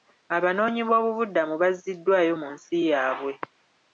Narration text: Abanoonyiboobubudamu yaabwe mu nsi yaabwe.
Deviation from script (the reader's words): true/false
true